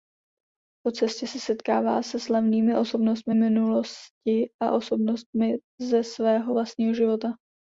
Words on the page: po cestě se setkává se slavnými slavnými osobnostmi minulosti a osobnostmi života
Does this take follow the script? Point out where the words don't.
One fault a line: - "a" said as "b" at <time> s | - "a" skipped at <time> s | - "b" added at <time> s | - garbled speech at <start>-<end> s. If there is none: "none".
- "slavnými" skipped at 2.8 s
- "ze svého vlastního" added at 5.8 s